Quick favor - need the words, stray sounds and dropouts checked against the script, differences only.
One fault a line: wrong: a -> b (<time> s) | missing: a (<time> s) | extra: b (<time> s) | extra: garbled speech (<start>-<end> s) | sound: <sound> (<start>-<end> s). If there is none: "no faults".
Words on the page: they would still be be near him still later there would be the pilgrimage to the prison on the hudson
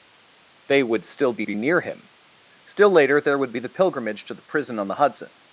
no faults